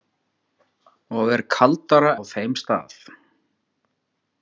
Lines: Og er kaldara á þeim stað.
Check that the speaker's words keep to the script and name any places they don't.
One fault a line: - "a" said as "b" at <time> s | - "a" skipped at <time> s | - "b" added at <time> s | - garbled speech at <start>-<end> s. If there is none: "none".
none